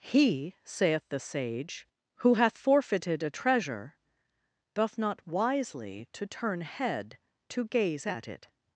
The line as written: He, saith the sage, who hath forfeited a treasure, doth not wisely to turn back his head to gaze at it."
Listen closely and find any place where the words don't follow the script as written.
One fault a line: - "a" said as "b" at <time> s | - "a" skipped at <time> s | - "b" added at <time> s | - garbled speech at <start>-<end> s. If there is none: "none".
- "back his" skipped at 6.6 s